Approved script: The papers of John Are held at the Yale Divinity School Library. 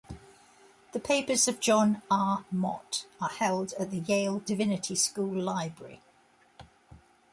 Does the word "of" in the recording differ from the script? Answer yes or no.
no